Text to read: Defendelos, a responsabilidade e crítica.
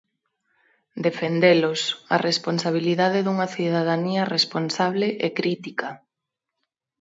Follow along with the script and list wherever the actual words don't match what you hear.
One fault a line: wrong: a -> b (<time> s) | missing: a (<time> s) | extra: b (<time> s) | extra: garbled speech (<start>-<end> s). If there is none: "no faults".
extra: dunha cidadanía responsable (3.2 s)